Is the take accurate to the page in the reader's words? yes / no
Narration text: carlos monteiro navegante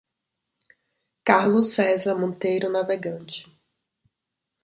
no